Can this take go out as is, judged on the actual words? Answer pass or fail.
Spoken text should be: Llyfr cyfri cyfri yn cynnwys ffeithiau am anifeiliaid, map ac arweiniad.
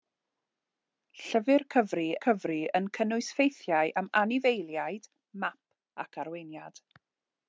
pass